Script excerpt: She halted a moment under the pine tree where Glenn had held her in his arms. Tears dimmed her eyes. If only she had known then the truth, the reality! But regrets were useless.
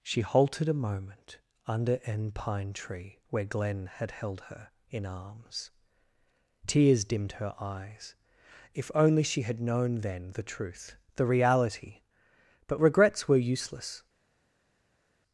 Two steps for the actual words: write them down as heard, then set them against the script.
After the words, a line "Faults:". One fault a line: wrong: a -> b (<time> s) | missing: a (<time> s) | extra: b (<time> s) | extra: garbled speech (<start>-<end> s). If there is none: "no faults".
She halted a moment under an pine tree where Glenn had held her in arms. Tears dimmed her eyes. If only she had known then the truth, the reality! But regrets were useless.
Faults:
wrong: the -> an (2.0 s)
missing: his (5.0 s)